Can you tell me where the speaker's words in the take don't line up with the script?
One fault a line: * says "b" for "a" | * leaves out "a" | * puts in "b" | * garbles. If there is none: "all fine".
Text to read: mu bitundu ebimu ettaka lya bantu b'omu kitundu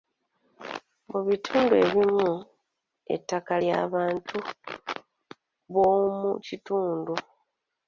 all fine